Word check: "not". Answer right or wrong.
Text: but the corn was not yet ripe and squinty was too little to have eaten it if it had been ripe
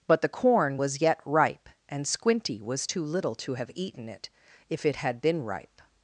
wrong